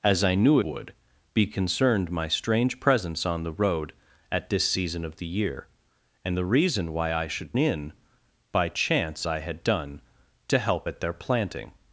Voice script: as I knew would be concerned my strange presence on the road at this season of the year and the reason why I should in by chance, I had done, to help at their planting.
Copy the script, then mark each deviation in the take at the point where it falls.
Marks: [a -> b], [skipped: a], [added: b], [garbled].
as I knew would be concerned my strange presence on the road at this season of the year and the reason why I should in by chance, I had done, to help at their planting.